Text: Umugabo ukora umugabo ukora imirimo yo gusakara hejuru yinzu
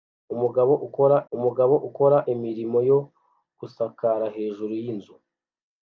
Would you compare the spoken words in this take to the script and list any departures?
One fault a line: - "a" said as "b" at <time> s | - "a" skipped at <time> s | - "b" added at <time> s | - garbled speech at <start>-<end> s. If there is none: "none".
none